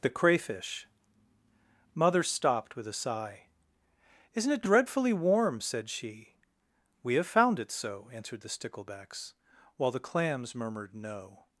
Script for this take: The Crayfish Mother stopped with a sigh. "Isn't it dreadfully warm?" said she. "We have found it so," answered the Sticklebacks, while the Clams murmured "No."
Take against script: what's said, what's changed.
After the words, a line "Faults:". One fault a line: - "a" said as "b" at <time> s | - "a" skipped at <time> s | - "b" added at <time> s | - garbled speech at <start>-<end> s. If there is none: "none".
The Crayfish Mother stopped with a sigh. "Isn't it dreadfully warm?" said she. "We have found it so," answered the Sticklebacks, while the Clams murmured "No."
Faults:
none